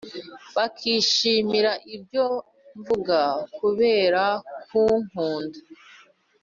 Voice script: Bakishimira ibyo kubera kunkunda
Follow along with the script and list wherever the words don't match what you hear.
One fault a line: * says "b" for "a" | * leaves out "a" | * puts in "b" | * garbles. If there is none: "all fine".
* puts in "mvuga"